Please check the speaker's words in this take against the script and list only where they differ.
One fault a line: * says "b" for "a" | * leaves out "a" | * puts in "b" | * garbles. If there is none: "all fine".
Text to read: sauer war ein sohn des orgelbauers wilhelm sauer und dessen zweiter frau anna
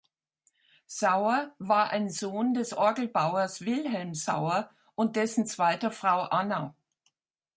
all fine